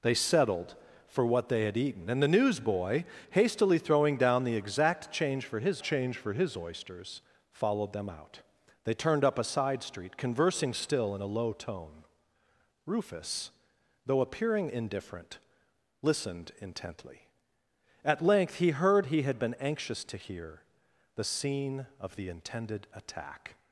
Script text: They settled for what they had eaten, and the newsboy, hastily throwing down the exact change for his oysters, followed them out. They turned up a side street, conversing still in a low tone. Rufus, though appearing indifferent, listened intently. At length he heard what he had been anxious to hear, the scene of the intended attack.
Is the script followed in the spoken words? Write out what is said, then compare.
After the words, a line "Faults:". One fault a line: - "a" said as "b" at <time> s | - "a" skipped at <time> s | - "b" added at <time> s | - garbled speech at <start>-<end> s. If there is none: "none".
They settled for what they had eaten, and the newsboy, hastily throwing down the exact change for his change for his oysters, followed them out. They turned up a side street, conversing still in a low tone. Rufus, though appearing indifferent, listened intently. At length he heard he had been anxious to hear, the scene of the intended attack.
Faults:
- "change for his" added at 5.8 s
- "what" skipped at 19.1 s